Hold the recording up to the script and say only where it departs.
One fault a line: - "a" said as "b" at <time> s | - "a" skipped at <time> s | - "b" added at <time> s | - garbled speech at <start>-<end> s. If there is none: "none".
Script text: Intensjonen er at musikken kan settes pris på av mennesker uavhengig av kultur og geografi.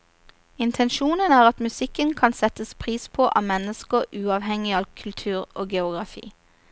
none